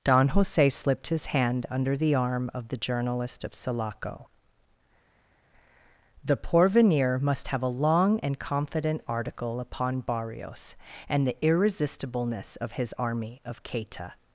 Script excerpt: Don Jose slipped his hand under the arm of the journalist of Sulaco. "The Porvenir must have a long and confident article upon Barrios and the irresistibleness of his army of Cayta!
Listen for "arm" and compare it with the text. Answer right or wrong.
right